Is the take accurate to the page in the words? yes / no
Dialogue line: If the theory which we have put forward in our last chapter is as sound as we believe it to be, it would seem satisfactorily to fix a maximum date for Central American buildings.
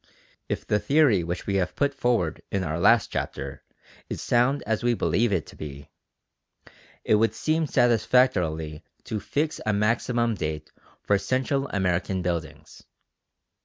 no